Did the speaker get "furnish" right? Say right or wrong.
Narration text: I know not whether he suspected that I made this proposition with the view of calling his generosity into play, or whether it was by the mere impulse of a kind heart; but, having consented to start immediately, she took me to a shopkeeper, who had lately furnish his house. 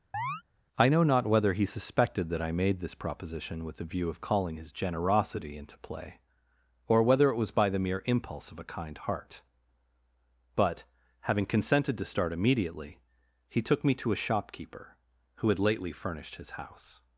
wrong